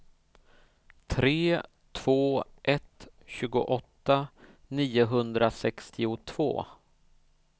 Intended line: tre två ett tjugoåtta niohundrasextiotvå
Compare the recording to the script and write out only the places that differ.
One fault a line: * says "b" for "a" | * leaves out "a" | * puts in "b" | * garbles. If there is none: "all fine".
all fine